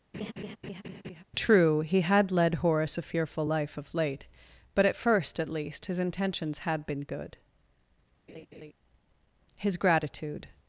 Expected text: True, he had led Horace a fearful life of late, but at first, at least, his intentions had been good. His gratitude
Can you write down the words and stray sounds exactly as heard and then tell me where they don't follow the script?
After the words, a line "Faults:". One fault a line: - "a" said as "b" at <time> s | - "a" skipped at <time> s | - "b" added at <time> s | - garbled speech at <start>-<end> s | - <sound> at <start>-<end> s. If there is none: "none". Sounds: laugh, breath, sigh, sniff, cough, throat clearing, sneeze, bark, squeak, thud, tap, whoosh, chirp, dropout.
True, he had led Horace a fearful life of late, but at first, at least, his intentions had been good. His gratitude
Faults:
- laugh at 0.1-1.2 s
- laugh at 8.3-8.7 s